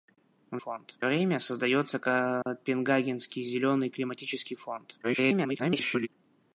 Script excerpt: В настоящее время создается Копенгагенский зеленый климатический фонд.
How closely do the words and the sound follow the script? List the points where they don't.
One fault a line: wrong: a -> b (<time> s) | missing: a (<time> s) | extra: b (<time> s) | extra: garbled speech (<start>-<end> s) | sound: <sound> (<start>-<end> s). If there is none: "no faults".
wrong: настоящее -> фонд (0.5 s)
sound: dropout (2.4-2.5 s)
extra: garbled speech (5.0-6.1 s)